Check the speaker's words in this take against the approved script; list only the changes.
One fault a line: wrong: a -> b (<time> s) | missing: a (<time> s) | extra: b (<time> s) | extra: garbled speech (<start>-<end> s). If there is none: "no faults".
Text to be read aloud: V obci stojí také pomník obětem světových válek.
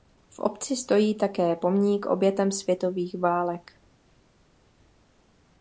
no faults